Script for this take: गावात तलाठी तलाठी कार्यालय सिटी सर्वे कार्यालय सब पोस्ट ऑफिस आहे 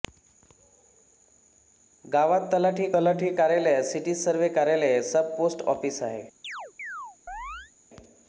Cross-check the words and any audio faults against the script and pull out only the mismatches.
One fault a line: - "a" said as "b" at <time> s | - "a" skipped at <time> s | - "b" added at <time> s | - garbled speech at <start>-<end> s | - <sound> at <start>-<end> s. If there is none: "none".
- chirp at 6.4-7.7 s